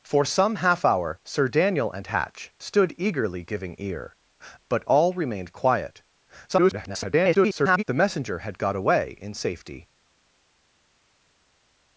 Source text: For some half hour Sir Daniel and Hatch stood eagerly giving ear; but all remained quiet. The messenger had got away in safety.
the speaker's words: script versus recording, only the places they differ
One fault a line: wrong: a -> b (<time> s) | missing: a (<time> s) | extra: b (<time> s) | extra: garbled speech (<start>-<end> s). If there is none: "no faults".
extra: garbled speech (6.5-7.8 s)